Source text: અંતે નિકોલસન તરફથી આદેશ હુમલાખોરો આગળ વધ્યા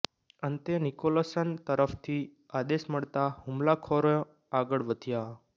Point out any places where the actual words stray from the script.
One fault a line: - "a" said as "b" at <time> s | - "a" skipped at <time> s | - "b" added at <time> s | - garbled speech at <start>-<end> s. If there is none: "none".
- "મળતાં" added at 2.9 s